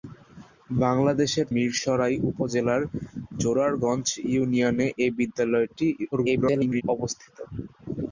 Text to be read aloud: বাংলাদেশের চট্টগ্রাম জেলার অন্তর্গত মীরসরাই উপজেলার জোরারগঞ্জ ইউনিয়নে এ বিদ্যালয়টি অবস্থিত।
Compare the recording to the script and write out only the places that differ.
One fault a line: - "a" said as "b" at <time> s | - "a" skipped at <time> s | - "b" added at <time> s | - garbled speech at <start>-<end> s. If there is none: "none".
- "চট্টগ্রাম জেলার অন্তর্গত" skipped at 1.5 s
- garbled speech at 6.1-6.8 s